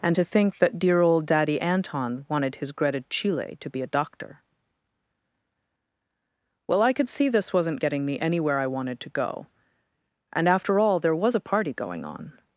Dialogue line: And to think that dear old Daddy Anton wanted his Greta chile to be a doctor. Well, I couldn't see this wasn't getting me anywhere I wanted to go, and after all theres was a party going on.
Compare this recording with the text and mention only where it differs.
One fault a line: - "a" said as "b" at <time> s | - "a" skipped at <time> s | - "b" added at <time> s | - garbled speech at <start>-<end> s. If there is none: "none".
- "couldn't" said as "could" at 6.9 s
- "theres" said as "there" at 11.0 s